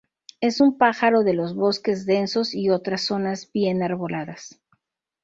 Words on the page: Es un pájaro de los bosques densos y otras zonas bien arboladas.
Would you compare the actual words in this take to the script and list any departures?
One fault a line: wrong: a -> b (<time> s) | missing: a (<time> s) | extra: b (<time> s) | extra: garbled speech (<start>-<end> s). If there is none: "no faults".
no faults